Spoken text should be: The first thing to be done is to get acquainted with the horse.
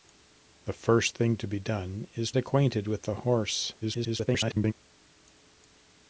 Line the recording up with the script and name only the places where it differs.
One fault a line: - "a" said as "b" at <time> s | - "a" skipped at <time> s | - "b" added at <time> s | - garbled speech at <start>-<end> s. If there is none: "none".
- "to get" skipped at 2.3 s
- garbled speech at 3.8-4.7 s